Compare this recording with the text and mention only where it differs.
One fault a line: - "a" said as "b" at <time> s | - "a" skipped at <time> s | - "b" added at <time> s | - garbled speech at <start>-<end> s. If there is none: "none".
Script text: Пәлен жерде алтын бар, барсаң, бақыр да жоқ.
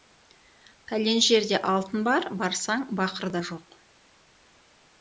none